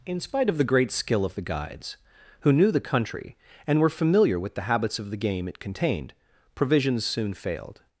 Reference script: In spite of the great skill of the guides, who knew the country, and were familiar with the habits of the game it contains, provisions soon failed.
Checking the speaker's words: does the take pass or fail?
fail